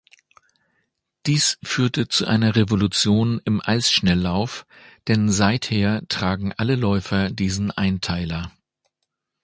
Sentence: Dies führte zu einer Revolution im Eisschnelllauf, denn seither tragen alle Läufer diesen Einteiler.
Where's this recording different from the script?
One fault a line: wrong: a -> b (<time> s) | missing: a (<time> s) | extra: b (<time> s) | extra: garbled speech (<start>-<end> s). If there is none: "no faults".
no faults